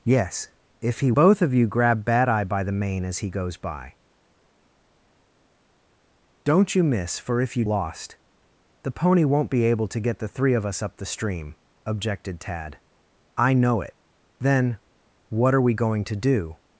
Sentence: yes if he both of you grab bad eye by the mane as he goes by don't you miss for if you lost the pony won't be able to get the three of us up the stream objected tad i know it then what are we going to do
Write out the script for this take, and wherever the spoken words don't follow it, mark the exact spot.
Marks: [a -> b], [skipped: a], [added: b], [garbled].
yes if he both of you grab bad eye by the mane as he goes by don't you miss for if you lost the pony won't be able to get the three of us up the stream objected tad i know it then what are we going to do